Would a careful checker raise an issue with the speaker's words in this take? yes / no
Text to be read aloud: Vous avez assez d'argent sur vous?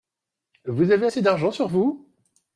no